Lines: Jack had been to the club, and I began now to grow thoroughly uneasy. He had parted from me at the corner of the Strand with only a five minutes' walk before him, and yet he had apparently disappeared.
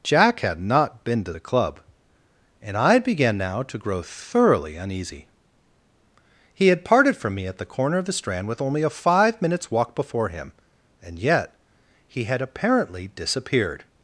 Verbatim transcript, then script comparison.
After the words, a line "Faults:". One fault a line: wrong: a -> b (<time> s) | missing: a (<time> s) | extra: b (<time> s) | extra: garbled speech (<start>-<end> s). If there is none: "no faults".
Jack had not been to the club, and I began now to grow thoroughly uneasy. He had parted from me at the corner of the Strand with only a five minutes' walk before him, and yet he had apparently disappeared.
Faults:
extra: not (0.6 s)